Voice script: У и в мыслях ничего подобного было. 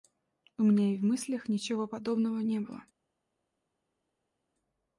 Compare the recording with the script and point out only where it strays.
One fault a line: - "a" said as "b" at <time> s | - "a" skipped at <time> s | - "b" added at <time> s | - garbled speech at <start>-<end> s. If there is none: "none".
- "меня" added at 0.6 s
- "не" added at 2.4 s